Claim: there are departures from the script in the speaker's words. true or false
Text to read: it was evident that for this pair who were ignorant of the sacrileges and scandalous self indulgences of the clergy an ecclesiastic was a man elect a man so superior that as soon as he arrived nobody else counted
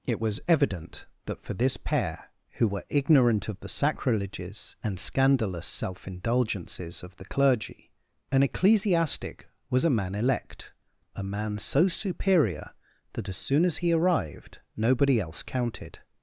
false